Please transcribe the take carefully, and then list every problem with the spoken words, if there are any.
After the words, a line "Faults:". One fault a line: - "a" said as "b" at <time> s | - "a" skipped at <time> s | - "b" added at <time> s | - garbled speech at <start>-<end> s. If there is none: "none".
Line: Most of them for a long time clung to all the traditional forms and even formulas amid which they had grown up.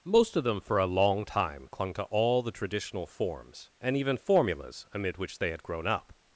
Most of them for a long time clung to all the traditional forms and even formulas amid which they had grown up.
Faults:
none